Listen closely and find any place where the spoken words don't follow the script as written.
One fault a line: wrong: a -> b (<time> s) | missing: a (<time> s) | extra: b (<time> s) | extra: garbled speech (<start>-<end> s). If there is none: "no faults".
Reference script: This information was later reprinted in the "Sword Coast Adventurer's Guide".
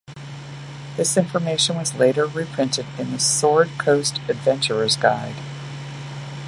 no faults